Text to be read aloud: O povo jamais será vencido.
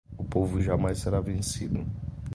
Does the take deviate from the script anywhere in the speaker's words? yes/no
no